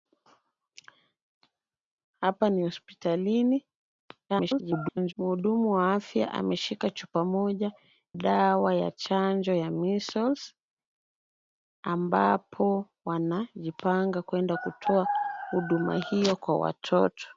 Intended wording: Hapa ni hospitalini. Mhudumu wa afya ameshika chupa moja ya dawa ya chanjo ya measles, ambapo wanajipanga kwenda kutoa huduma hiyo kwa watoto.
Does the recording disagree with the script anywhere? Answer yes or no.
yes